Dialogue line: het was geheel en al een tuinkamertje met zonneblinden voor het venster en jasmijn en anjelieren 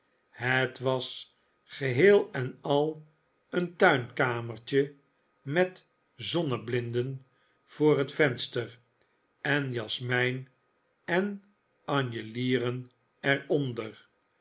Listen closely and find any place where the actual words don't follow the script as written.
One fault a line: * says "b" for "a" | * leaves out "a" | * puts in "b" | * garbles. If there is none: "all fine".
all fine